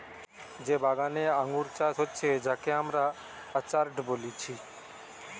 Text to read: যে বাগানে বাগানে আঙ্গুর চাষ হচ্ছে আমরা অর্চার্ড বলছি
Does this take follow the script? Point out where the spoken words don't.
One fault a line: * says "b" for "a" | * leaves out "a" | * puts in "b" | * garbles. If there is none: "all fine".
* leaves out "বাগানে"
* puts in "যাকে"